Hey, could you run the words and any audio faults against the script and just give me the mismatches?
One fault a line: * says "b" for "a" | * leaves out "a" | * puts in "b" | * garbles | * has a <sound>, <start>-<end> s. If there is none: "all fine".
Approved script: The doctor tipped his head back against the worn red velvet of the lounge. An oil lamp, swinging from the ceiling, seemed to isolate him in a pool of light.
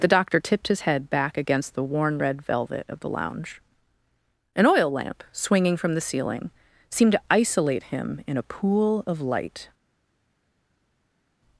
all fine